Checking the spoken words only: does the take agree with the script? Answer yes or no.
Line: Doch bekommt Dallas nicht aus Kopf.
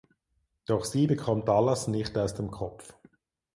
no